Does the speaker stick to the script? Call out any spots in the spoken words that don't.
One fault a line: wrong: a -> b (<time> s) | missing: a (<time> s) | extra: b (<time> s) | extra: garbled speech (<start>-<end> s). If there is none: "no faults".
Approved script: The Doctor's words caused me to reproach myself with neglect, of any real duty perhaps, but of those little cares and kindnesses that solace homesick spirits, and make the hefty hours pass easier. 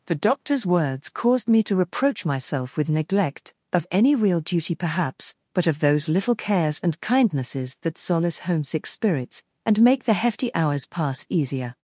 no faults